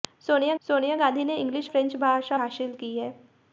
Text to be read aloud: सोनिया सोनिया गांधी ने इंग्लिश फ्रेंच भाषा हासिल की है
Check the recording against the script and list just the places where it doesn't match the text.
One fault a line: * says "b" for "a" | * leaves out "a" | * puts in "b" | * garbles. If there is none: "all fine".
all fine